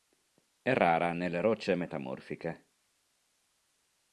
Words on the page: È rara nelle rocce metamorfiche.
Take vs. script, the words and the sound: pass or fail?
pass